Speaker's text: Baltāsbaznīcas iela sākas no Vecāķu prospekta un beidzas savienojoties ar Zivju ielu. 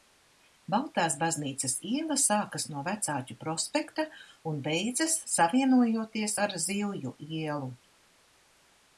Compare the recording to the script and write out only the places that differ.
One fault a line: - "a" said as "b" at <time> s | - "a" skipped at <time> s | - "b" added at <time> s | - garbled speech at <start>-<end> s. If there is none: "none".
none